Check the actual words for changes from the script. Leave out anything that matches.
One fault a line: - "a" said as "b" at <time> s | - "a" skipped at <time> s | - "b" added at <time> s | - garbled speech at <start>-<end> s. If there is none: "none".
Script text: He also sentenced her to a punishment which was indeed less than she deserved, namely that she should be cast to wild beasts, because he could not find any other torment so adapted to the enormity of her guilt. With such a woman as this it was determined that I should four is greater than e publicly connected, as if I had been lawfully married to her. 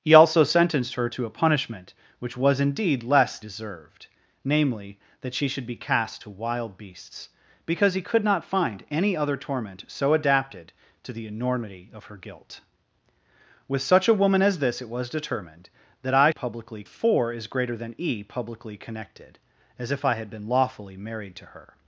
- "than she" skipped at 3.4 s
- "should" said as "publicly" at 16.3 s